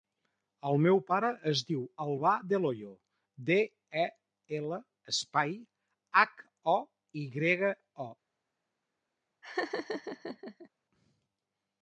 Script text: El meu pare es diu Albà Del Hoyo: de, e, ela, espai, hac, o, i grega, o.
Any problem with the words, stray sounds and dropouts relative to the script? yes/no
yes